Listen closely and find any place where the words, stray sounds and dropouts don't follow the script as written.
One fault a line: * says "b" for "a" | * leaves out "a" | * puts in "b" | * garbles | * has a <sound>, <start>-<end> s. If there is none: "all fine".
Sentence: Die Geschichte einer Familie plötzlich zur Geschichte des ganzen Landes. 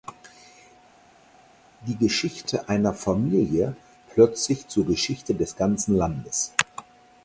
all fine